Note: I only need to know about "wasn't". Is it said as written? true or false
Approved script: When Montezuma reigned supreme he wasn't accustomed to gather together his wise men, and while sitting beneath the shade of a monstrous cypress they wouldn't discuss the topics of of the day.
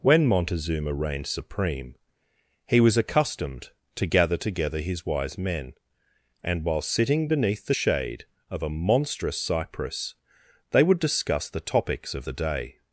false